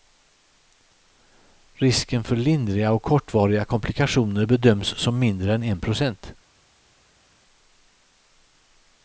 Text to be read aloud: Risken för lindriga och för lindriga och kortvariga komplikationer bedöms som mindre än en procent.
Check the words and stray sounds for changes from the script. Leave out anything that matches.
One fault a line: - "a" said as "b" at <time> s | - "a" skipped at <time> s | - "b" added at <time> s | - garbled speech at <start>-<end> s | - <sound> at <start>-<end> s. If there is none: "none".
- "för lindriga och" skipped at 3.0 s